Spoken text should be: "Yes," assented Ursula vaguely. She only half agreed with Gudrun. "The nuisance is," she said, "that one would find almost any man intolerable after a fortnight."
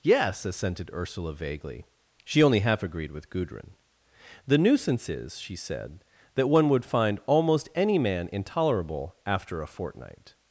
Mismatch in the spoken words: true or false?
false